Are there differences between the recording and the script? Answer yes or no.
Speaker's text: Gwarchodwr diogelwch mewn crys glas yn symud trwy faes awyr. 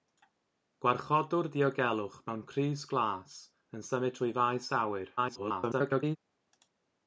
yes